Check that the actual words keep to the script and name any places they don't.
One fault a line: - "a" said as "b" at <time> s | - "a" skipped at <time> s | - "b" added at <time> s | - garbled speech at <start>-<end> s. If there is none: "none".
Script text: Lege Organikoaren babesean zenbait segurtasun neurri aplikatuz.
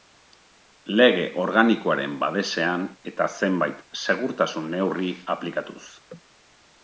- "eta" added at 3.1 s